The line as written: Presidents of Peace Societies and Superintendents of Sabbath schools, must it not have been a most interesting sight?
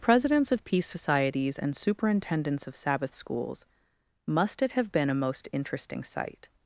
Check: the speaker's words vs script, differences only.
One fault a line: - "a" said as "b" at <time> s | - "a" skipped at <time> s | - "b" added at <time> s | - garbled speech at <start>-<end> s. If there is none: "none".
- "not" skipped at 4.7 s